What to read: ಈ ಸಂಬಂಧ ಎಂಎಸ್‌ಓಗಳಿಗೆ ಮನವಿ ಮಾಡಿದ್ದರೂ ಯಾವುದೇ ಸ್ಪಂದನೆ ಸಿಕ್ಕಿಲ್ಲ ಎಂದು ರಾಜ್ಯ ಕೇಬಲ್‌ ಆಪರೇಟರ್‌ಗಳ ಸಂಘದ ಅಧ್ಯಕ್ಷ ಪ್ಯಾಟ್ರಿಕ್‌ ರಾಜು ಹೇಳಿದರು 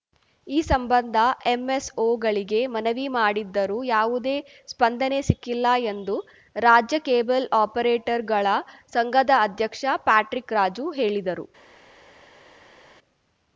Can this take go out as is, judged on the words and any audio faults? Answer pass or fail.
pass